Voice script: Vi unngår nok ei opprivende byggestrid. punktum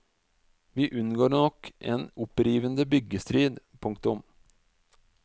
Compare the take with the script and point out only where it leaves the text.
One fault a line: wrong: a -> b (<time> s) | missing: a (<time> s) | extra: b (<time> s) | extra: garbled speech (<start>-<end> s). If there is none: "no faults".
wrong: ei -> en (1.8 s)